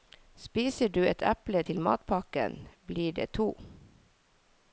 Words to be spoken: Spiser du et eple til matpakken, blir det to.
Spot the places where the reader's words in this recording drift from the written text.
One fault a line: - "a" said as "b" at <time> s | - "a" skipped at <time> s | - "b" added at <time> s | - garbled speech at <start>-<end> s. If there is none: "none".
none